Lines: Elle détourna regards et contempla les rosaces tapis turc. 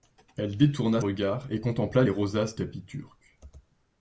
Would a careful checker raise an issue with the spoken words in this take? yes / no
no